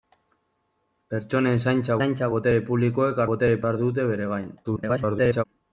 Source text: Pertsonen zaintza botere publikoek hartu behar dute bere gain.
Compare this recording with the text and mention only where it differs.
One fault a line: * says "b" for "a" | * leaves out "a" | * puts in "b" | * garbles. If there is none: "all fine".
* puts in "zaintza"
* says "botere" for "hartu"
* garbles